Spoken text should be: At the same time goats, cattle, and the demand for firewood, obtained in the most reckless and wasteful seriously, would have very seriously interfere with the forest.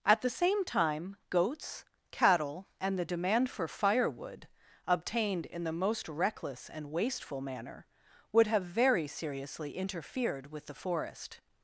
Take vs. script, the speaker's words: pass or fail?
fail